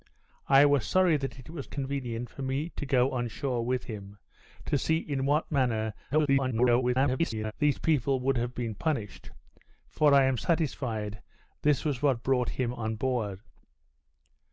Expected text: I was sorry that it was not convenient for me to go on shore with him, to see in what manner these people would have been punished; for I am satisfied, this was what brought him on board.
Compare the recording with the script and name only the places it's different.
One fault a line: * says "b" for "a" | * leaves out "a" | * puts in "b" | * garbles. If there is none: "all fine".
* leaves out "not"
* garbles